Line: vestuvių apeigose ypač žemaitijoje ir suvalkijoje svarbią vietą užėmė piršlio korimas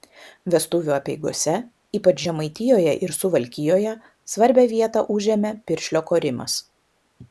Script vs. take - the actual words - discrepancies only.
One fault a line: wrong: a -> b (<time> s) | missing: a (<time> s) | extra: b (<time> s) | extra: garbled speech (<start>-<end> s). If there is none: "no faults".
no faults